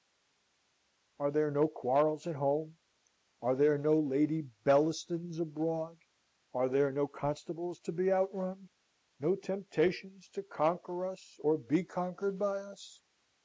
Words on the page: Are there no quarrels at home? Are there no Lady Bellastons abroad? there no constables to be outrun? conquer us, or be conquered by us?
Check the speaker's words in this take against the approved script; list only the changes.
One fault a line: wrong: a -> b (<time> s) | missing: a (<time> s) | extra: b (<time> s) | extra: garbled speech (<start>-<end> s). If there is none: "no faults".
extra: are (6.5 s)
extra: no temptations to (9.2 s)